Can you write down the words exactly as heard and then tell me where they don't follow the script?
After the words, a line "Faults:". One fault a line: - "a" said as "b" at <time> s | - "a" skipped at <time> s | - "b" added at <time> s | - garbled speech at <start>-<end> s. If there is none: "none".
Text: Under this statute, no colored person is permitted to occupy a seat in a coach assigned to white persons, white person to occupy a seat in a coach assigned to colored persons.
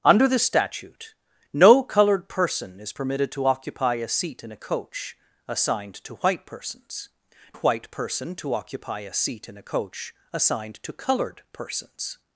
Under this statute, no colored person is permitted to occupy a seat in a coach assigned to white persons, white person to occupy a seat in a coach assigned to colored persons.
Faults:
none